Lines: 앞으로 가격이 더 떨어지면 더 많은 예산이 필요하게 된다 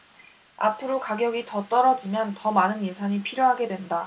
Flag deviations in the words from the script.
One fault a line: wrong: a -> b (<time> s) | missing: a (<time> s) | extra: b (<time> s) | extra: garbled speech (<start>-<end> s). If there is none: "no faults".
no faults